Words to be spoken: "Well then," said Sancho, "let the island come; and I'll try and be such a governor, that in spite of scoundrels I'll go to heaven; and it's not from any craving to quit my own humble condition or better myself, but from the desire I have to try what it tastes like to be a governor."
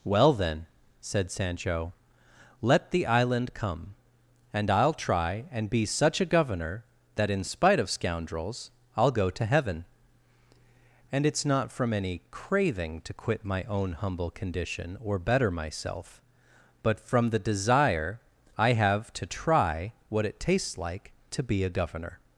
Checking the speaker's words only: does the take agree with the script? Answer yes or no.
yes